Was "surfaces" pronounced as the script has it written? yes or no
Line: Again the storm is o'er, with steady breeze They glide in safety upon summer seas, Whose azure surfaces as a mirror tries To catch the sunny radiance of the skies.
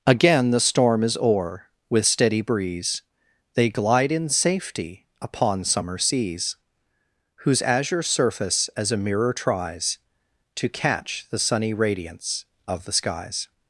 no